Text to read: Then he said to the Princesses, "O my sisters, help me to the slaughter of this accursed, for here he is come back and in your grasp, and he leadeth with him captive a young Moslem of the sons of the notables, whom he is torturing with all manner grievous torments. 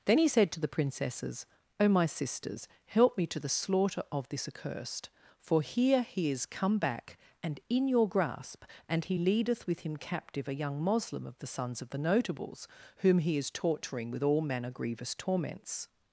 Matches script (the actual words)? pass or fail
pass